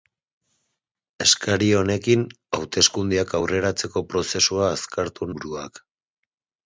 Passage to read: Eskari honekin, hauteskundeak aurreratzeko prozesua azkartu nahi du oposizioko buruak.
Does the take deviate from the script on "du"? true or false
true